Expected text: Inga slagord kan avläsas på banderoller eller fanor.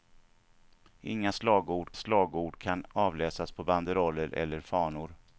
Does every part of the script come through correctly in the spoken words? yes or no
no